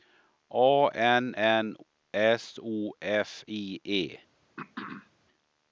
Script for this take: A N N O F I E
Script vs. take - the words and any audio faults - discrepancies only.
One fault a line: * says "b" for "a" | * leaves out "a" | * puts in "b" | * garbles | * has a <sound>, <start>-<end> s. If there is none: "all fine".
* puts in "S"
* has a throat clearing, 4.6-5.1 s